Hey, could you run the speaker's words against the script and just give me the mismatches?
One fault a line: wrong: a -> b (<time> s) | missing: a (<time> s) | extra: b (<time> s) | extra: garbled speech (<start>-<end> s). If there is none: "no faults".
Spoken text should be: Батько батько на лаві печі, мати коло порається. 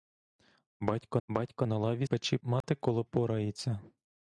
no faults